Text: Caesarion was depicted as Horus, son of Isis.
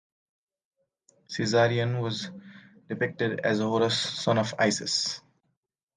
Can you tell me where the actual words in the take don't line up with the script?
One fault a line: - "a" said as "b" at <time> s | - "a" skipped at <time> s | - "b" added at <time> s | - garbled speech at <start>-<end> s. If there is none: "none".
none